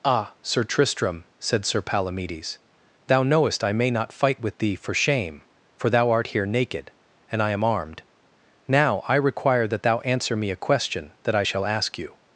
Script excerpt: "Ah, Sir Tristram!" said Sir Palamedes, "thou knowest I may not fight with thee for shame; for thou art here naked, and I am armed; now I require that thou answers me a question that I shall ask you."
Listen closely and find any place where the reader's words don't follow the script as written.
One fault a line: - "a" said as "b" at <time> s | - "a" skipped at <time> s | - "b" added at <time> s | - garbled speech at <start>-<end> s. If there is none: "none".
- "answers" said as "answer" at 10.0 s